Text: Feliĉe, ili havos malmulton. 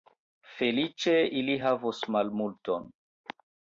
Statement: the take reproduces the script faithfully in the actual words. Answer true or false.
true